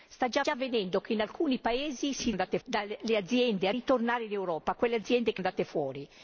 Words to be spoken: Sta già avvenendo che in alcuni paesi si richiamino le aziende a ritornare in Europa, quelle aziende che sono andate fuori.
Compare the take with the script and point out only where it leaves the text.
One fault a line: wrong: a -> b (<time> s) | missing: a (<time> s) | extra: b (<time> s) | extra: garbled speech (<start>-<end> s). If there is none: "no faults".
extra: già (0.4 s)
wrong: richiamino -> andate (2.3 s)
missing: sono (5.4 s)